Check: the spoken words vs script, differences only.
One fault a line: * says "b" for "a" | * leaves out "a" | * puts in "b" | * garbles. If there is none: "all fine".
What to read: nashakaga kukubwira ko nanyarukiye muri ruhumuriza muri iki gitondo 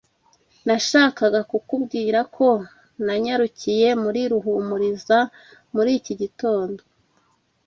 all fine